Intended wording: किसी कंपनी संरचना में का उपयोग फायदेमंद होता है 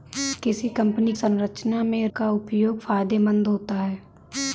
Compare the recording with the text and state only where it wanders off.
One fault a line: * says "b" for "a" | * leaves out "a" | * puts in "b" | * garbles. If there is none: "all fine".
all fine